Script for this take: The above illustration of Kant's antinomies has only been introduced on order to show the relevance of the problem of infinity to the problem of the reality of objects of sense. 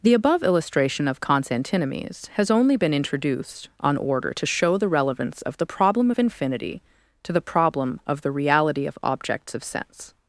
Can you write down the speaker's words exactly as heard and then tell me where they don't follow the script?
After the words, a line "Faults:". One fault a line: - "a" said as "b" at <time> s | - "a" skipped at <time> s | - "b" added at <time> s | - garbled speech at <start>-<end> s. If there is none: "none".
The above illustration of Kant's antinomies has only been introduced on order to show the relevance of the problem of infinity to the problem of the reality of objects of sense.
Faults:
none